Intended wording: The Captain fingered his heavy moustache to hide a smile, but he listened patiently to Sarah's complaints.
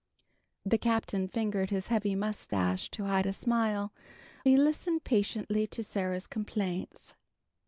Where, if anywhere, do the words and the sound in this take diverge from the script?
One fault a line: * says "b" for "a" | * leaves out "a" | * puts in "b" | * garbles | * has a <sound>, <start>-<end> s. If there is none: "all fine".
* has a dropout, 2.5-2.5 s
* leaves out "but"